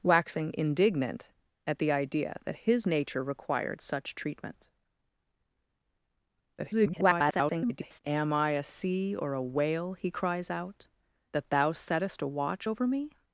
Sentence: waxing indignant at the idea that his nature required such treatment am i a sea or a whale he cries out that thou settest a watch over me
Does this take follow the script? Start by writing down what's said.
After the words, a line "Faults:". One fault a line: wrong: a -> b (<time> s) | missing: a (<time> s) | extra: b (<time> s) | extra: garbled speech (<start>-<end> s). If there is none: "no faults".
waxing indignant at the idea that his nature required such treatment [garbled] am i a sea or a whale he cries out that thou settest a watch over me
Faults:
extra: garbled speech (6.6-8.0 s)